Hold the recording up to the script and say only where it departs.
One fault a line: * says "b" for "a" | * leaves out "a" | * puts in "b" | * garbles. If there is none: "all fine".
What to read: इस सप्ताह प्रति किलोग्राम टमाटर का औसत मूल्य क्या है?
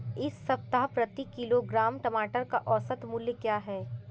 all fine